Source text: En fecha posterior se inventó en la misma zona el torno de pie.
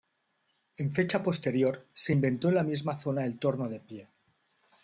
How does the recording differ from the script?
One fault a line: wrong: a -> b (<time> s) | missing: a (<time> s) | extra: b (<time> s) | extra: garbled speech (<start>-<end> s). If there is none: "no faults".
no faults